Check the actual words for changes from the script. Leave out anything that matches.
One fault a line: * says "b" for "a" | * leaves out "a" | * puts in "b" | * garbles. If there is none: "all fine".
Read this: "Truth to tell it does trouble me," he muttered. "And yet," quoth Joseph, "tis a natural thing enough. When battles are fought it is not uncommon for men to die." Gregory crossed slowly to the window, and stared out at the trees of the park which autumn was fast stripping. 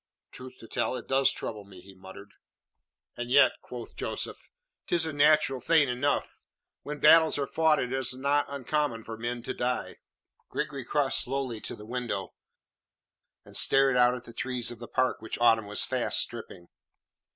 all fine